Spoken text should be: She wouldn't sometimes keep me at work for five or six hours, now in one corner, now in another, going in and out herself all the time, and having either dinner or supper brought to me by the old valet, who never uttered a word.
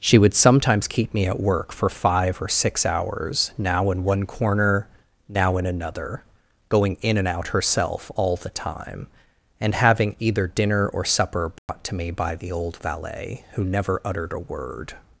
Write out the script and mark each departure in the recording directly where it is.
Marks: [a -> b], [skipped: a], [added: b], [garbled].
She [wouldn't -> would] sometimes keep me at work for five or six hours, now in one corner, now in another, going in and out herself all the time, and having either dinner or supper brought to me by the old valet, who never uttered a word.